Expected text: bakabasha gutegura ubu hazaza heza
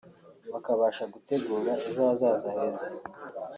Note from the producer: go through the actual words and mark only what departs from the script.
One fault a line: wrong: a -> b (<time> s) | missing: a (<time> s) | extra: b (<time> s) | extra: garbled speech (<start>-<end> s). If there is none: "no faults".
wrong: ubu -> ejo (1.9 s)